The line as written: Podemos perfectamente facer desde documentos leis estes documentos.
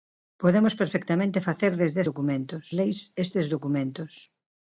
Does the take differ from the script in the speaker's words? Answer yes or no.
no